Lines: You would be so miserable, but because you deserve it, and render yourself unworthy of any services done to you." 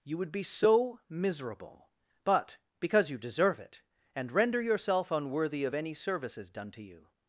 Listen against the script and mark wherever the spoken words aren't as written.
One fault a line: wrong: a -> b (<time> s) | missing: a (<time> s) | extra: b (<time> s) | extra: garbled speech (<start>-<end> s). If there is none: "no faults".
no faults